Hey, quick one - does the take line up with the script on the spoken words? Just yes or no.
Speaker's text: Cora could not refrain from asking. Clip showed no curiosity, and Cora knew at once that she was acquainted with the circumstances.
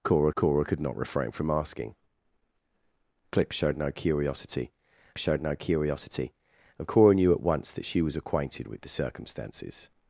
no